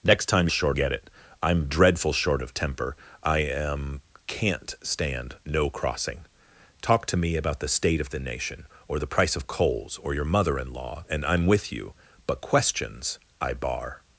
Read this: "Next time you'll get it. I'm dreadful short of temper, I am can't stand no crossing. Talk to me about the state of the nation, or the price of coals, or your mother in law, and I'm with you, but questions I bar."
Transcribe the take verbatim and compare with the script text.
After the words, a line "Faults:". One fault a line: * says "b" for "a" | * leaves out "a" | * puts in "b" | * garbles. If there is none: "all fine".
"Next time short get it. I'm dreadful short of temper, I am can't stand no crossing. Talk to me about the state of the nation, or the price of coals, or your mother in law, and I'm with you, but questions I bar."
Faults:
* says "short" for "you'll"